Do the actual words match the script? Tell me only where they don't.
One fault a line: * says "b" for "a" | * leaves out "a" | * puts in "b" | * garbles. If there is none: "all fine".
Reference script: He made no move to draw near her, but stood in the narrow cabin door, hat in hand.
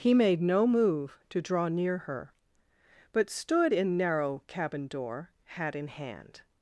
* leaves out "the"